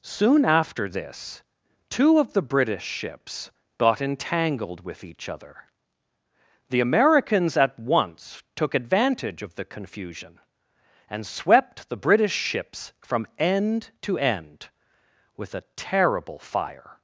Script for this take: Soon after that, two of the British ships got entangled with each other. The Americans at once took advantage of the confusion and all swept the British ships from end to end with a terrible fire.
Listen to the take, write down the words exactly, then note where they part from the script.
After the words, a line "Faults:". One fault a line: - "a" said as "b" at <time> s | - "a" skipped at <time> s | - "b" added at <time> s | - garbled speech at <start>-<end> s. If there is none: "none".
Soon after this, two of the British ships got entangled with each other. The Americans at once took advantage of the confusion and swept the British ships from end to end with a terrible fire.
Faults:
- "that" said as "this" at 0.9 s
- "all" skipped at 11.3 s